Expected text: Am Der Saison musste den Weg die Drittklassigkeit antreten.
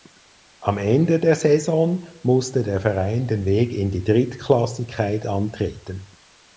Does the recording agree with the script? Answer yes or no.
no